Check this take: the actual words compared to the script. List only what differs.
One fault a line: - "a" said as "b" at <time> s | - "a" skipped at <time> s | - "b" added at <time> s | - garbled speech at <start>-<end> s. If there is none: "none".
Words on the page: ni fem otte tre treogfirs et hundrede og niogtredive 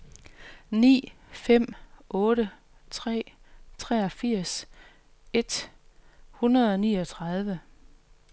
none